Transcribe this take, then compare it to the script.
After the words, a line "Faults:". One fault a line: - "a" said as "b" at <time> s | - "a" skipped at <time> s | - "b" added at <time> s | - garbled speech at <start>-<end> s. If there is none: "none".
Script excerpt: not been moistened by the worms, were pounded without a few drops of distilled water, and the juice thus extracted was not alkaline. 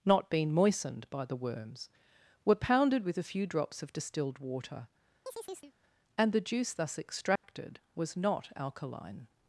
not been moistened by the worms, were pounded with a few drops of distilled water, and the juice thus extracted was not alkaline.
Faults:
- "without" said as "with" at 3.0 s